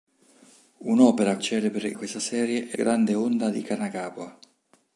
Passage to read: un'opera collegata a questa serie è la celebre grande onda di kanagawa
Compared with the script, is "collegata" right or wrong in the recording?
wrong